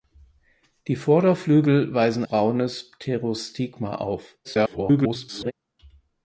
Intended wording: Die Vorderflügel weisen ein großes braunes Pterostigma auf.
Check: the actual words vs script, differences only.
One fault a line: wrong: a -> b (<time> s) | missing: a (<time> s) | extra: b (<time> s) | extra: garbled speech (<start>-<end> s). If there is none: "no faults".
missing: ein großes (2.2 s)
extra: garbled speech (4.4-5.5 s)